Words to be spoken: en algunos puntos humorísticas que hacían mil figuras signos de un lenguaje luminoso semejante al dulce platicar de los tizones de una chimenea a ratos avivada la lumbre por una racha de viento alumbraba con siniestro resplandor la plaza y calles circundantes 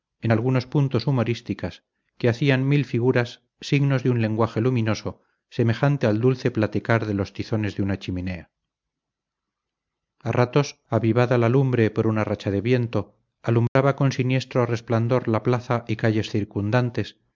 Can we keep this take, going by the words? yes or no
yes